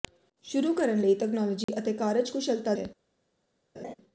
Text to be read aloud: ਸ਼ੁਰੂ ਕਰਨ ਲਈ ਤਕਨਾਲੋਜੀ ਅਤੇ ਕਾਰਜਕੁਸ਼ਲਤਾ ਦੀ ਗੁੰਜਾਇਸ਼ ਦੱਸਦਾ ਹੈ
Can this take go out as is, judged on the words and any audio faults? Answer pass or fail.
fail